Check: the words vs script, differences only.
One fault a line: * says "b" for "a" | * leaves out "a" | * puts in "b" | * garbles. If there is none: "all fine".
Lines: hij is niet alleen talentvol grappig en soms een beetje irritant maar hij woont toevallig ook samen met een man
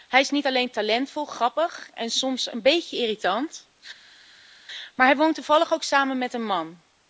all fine